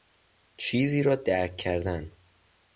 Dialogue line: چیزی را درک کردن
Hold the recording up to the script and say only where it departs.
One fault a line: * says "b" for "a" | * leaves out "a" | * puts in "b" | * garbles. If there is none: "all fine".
all fine